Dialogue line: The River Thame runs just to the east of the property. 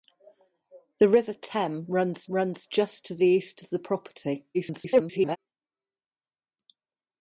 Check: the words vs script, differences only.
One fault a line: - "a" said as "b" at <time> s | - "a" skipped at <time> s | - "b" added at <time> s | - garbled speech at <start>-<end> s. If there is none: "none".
- "runs" added at 2.3 s
- garbled speech at 4.5-5.4 s